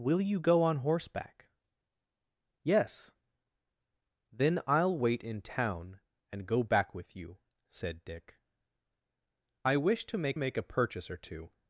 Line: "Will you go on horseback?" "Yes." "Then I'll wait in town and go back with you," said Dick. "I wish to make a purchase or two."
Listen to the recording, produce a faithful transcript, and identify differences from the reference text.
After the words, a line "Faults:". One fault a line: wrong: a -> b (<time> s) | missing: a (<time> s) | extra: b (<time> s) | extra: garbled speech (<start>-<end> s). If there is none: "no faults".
"Will you go on horseback?" "Yes." "Then I'll wait in town and go back with you," said Dick. "I wish to make make a purchase or two."
Faults:
extra: make (10.3 s)